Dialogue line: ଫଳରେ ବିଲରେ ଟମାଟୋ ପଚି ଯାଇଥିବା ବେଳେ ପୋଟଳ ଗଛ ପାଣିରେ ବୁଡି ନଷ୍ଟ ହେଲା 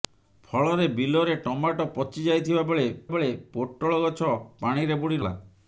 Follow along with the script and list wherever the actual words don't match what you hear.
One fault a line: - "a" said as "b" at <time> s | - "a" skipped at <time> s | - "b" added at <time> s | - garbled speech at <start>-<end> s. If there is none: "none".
- "ବେଳେ" added at 3.1 s
- "ନଷ୍ଟ" skipped at 5.2 s